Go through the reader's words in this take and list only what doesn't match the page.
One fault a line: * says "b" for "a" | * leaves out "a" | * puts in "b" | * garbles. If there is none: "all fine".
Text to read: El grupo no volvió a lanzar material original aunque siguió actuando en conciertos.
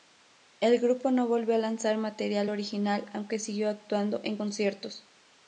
all fine